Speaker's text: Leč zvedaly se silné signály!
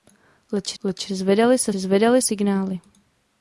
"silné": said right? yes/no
no